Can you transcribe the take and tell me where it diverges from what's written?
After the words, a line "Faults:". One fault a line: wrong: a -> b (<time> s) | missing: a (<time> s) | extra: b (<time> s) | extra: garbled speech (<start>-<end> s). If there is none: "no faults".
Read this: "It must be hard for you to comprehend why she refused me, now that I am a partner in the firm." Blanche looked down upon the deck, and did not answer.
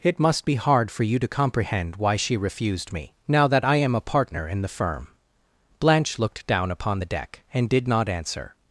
"It must be hard for you to comprehend why she refused me, now that I am a partner in the firm." Blanche looked down upon the deck, and did not answer.
Faults:
no faults